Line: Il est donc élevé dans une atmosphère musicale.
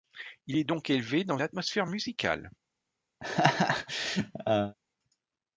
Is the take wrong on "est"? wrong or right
right